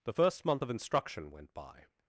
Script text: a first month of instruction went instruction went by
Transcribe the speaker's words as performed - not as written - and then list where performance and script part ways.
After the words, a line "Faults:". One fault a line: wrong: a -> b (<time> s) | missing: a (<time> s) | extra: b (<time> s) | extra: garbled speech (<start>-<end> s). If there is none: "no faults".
the first month of instruction went by
Faults:
wrong: a -> the (0.0 s)
missing: instruction went (1.5 s)